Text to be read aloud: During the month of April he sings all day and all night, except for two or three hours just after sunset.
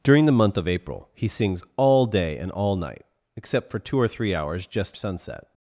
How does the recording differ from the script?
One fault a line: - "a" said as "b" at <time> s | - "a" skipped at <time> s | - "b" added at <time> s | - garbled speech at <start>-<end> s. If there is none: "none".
- "after" skipped at 5.0 s